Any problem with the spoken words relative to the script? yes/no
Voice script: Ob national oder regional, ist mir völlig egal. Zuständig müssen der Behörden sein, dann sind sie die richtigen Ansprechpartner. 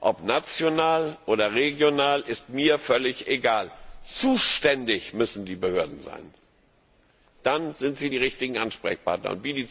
yes